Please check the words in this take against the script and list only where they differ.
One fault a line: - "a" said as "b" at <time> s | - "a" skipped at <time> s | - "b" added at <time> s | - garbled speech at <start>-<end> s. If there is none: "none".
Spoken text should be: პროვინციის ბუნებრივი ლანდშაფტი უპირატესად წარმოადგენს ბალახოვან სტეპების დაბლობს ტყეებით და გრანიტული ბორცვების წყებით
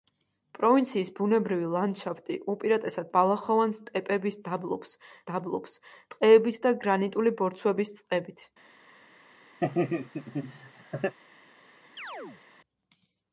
- "წარმოადგენს" skipped at 3.1 s
- "დაბლობს" added at 5.3 s